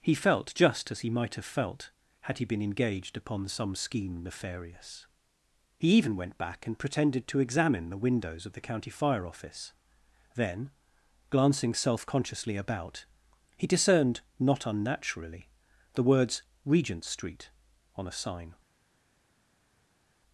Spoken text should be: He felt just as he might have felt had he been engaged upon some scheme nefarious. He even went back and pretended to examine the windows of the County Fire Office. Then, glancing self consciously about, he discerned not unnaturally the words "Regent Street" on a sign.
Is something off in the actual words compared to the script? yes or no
no